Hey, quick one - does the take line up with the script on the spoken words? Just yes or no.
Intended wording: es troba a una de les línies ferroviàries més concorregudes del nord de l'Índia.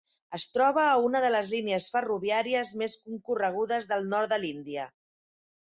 yes